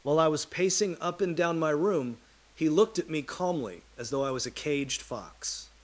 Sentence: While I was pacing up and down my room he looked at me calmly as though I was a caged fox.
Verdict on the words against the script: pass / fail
pass